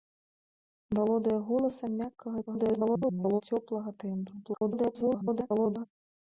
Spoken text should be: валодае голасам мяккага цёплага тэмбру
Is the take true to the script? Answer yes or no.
no